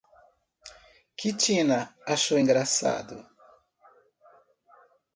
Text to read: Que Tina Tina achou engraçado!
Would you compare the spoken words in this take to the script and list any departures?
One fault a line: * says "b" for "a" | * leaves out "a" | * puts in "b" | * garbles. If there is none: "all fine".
* leaves out "Tina"